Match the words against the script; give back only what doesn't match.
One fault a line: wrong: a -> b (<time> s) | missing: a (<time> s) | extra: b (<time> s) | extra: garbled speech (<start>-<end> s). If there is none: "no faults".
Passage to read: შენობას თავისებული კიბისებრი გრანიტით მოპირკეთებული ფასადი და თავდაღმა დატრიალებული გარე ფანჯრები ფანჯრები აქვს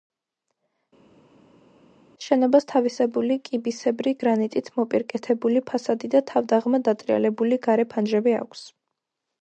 missing: ფანჯრები (8.4 s)